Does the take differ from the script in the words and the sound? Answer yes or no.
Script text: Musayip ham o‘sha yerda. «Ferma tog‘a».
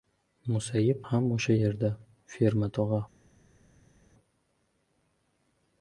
no